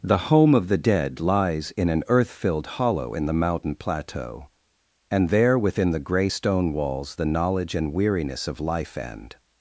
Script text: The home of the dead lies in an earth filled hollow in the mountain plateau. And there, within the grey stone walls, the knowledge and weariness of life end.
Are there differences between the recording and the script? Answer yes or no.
no